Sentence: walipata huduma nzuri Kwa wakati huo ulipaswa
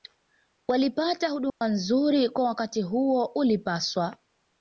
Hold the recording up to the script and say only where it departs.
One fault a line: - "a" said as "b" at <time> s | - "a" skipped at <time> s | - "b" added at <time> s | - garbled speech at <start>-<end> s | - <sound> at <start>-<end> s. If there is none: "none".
- dropout at 1.5-1.6 s